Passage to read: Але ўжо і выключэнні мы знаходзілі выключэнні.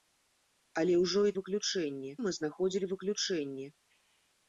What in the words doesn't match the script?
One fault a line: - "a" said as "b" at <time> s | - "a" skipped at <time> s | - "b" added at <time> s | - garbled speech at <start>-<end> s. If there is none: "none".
none